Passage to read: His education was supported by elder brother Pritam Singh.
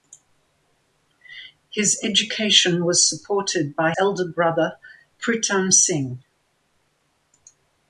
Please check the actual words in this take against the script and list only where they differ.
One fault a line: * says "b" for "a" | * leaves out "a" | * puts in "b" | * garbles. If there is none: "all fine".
all fine